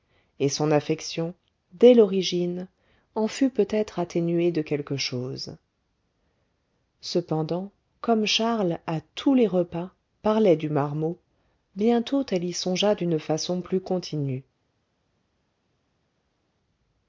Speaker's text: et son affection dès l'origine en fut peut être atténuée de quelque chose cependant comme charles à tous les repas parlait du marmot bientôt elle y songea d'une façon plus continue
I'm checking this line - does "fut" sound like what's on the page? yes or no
yes